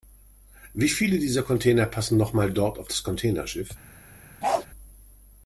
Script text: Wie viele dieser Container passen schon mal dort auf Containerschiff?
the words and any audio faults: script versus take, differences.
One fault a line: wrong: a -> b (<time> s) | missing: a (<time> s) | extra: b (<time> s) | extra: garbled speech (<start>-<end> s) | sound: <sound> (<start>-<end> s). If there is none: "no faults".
wrong: schon -> noch (2.2 s)
extra: das (2.9 s)
sound: bark (4.4-4.7 s)